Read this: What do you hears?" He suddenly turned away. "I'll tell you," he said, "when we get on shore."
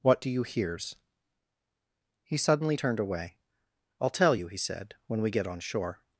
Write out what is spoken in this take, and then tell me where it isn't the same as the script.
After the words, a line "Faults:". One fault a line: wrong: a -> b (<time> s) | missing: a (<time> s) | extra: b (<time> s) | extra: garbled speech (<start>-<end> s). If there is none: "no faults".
What do you hears?" He suddenly turned away. "I'll tell you," he said, "when we get on shore."
Faults:
no faults